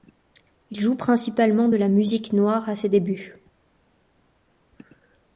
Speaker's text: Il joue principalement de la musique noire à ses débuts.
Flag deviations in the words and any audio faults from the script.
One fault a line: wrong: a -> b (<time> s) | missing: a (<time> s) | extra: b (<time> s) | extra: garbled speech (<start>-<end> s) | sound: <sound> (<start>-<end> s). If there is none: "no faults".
no faults